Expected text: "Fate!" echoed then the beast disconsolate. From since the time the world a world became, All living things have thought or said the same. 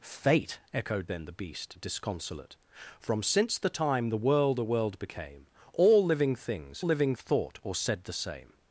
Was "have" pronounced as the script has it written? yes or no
no